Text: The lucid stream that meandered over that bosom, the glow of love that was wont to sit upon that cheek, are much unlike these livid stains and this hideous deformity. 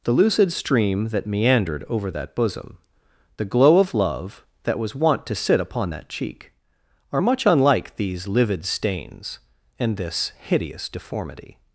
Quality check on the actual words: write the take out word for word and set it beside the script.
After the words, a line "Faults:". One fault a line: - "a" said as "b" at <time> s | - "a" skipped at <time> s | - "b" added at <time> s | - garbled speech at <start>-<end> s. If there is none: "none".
The lucid stream that meandered over that bosom, the glow of love that was wont to sit upon that cheek, are much unlike these livid stains and this hideous deformity.
Faults:
none